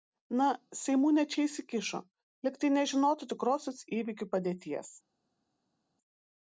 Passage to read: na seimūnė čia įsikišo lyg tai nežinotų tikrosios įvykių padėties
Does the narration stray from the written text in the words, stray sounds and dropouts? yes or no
no